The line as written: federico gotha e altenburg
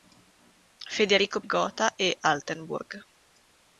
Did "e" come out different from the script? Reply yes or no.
no